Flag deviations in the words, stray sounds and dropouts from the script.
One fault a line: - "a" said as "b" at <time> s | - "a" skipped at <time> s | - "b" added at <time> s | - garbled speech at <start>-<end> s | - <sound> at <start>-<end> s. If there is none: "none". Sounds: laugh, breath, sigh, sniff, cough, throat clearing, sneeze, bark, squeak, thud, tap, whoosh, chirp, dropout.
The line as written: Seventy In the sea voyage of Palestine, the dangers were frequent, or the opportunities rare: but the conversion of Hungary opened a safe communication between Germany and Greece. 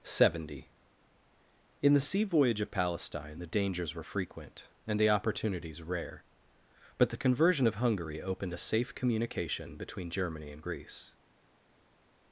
- "or" said as "and" at 4.8 s